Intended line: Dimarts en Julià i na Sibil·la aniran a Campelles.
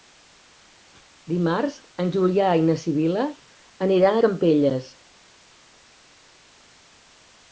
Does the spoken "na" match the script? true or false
true